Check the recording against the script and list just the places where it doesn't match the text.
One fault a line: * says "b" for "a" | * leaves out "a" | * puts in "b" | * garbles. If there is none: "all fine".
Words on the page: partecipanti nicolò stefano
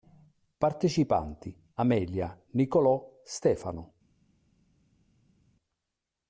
* puts in "amelia"